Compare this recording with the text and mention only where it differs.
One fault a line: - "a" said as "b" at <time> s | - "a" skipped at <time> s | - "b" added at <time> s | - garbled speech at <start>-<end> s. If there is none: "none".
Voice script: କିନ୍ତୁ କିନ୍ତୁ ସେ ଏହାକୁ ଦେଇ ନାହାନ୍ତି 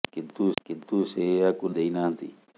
none